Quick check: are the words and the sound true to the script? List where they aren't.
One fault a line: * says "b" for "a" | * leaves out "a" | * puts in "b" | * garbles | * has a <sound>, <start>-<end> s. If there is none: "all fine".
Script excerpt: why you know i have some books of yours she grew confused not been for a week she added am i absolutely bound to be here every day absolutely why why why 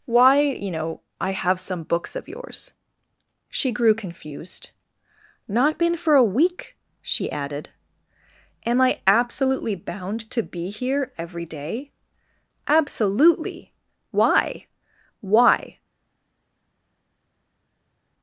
* leaves out "why"